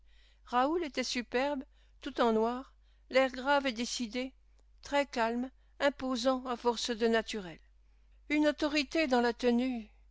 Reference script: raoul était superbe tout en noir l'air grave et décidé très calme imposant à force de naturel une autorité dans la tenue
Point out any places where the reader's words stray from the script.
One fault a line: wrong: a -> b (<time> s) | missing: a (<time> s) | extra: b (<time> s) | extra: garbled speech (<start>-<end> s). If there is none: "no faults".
no faults